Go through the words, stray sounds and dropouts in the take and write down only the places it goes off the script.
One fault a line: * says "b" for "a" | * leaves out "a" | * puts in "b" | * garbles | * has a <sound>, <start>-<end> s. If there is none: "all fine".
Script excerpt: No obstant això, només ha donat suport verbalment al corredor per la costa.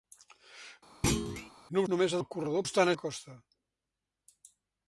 * has a thud, 1.0-1.5 s
* leaves out "obstant això"
* leaves out "donat suport verbalment"
* says "obstant" for "per"